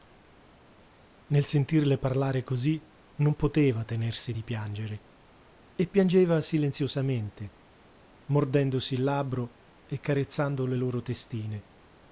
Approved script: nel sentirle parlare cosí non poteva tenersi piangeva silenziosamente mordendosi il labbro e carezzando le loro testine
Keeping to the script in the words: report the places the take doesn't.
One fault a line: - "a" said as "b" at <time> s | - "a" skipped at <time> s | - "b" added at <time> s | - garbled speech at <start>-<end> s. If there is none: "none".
- "di piangere e" added at 4.3 s